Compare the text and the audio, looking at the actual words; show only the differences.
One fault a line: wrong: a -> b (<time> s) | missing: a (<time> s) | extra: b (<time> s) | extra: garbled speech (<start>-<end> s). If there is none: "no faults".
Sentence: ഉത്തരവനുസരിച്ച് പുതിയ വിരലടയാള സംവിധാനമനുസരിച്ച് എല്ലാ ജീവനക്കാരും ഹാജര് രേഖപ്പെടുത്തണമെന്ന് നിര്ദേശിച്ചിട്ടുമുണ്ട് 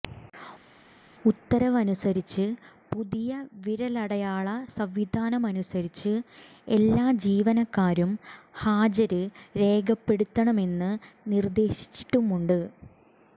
no faults